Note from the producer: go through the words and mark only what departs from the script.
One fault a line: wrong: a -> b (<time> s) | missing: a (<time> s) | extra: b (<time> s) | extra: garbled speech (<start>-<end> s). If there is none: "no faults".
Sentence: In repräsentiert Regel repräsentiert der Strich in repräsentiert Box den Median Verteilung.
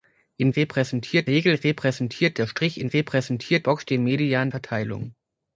no faults